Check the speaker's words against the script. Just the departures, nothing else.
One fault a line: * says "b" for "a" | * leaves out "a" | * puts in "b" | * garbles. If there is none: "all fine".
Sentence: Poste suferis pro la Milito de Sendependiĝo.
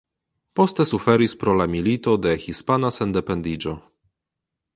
* puts in "Hispana"